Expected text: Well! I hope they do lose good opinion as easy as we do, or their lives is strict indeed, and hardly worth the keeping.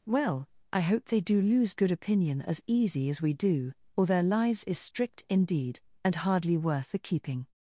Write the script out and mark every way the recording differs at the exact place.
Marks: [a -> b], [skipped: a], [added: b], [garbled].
Well! I hope they do lose good opinion as easy as we do, or their lives is strict indeed, and hardly worth the keeping.